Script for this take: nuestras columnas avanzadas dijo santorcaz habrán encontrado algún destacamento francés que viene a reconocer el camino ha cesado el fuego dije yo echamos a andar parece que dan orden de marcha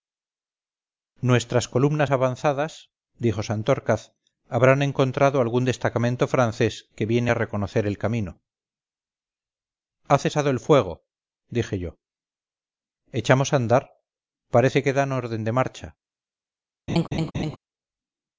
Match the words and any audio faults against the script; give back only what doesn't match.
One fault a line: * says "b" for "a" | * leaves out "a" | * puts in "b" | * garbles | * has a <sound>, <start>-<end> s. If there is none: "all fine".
* has a laugh, 16.9-17.6 s